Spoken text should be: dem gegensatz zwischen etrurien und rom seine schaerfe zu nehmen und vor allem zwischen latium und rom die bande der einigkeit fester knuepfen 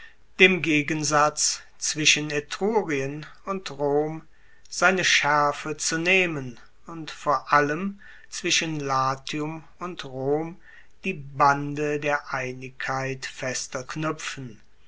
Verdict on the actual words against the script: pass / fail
pass